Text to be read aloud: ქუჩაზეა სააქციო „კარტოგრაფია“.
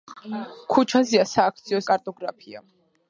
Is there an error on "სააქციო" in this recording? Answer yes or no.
no